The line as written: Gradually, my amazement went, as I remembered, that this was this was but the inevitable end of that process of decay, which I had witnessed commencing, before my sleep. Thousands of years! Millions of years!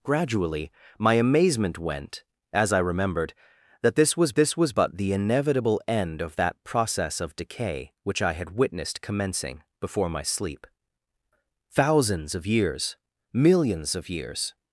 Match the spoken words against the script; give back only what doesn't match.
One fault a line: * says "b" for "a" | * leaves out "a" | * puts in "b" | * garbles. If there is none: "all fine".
all fine